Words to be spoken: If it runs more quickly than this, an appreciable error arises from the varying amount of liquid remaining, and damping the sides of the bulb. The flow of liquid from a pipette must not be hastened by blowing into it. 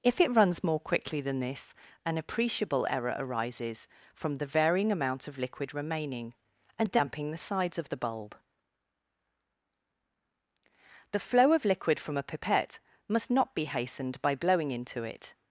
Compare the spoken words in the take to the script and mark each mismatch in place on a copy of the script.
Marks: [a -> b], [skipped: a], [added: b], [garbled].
If it runs more quickly than this, an appreciable error arises from the varying amount of liquid remaining, and damping the sides of the bulb. The flow of liquid from a pipette must not be hastened by blowing into it.